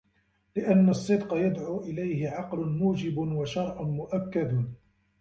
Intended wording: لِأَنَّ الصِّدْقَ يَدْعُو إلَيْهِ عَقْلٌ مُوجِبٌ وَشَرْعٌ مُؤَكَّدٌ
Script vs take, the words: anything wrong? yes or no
no